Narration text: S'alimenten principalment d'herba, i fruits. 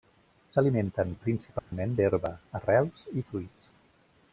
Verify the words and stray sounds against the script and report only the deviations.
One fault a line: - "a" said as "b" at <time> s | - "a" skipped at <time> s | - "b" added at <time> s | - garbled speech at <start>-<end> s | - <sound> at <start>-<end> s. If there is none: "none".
- dropout at 1.6-1.7 s
- "arrels" added at 2.6 s